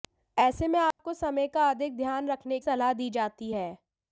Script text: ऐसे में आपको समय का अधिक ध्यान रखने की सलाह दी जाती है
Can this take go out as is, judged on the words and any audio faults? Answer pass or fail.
fail